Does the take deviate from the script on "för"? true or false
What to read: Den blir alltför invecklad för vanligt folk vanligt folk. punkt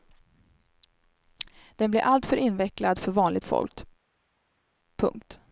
false